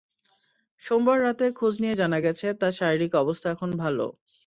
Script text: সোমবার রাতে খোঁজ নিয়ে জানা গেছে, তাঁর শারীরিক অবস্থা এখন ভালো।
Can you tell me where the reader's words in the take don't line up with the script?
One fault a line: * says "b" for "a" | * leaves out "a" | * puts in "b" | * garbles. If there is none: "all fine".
all fine